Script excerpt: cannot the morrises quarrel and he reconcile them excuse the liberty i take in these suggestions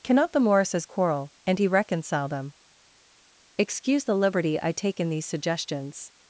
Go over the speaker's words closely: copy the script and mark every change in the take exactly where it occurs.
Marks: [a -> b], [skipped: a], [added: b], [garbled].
cannot the morrises quarrel and he reconcile them excuse the liberty i take in these suggestions